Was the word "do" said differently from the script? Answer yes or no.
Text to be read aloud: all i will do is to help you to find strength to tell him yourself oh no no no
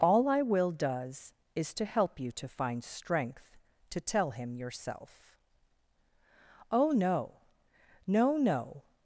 yes